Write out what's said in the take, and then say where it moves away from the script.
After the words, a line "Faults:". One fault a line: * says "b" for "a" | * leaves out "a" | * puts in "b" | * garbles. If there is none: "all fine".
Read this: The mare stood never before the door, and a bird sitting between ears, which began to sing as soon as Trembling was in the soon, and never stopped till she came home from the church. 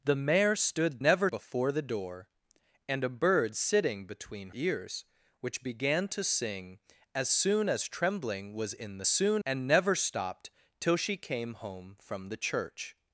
The mare stood never before the door, and a bird sitting between ears, which began to sing as soon as Trembling was in the soon, and never stopped till she came home from the church.
Faults:
all fine